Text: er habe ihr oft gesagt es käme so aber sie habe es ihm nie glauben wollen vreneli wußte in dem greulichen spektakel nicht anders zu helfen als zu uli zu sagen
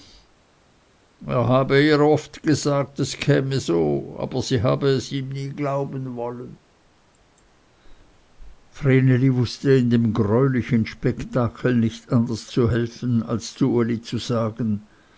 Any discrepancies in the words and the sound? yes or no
no